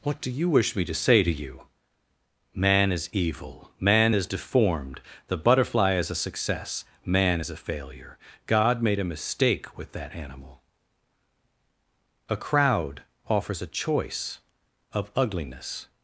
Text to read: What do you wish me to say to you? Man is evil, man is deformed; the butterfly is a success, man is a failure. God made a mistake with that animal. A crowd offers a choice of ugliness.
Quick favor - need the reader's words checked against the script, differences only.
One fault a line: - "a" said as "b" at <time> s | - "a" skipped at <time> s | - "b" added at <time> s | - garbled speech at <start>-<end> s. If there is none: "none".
none